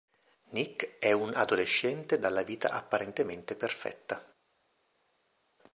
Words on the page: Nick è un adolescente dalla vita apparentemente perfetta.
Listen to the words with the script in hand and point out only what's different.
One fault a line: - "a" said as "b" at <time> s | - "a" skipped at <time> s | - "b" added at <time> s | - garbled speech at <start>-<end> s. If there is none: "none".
none